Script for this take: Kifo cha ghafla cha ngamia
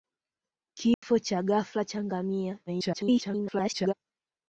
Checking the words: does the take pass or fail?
fail